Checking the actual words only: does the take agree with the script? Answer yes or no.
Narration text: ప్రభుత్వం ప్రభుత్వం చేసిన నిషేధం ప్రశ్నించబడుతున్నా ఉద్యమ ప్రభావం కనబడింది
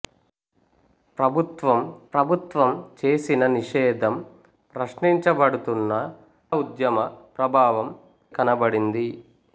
yes